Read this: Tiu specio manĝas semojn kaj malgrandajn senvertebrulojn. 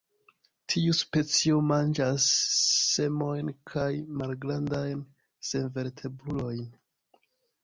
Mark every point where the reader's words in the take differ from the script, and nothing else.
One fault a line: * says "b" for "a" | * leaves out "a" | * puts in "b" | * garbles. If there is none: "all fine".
all fine